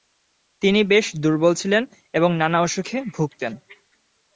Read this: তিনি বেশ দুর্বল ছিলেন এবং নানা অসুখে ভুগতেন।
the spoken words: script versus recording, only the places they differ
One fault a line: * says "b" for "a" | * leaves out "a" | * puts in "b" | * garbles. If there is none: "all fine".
all fine